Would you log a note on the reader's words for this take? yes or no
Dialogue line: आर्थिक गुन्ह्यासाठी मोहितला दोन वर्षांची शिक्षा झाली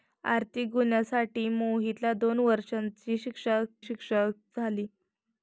yes